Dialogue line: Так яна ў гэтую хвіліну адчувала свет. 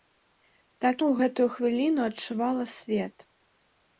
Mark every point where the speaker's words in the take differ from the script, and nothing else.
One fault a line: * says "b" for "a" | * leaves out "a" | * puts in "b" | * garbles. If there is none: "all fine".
* leaves out "яна"